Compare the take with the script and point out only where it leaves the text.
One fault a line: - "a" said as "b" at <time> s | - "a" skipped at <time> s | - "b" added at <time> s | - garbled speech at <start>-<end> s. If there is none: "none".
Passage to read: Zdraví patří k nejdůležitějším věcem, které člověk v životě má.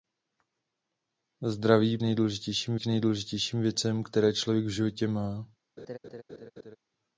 - "patří" said as "nejdůležitějším" at 2.0 s